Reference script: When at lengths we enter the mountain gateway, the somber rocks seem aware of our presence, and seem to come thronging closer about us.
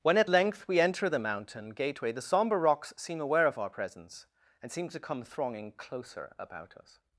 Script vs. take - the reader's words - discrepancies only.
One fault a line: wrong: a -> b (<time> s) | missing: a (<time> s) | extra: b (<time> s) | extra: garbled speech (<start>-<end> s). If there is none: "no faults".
wrong: lengths -> length (0.3 s)